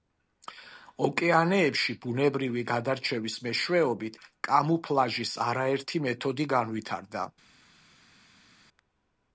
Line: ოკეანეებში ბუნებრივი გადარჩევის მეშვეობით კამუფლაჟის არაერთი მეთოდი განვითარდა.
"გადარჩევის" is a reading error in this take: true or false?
false